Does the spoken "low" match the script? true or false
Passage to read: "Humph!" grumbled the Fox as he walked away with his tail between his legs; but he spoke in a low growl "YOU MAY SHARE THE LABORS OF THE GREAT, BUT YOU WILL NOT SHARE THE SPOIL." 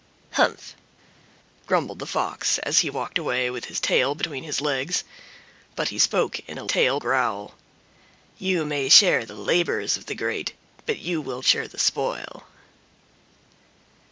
false